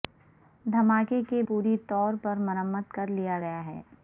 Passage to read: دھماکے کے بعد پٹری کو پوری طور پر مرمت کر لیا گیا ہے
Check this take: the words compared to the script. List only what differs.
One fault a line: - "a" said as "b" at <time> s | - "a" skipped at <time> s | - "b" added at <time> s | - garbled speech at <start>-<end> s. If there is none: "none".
- "بعد پٹری کو" skipped at 1.4 s